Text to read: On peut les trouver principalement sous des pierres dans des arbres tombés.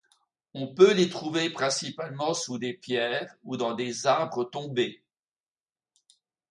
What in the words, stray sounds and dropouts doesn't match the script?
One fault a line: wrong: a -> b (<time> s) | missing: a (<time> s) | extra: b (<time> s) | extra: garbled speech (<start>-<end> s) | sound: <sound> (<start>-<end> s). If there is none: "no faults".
extra: ou (3.4 s)